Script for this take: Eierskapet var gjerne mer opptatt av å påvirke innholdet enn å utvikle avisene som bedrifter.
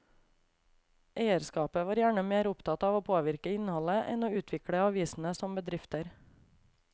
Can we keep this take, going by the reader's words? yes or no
yes